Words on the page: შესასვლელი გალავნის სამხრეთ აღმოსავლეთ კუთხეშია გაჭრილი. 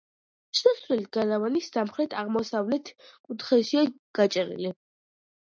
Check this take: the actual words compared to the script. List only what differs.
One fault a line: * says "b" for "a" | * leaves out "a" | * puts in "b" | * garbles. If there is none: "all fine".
all fine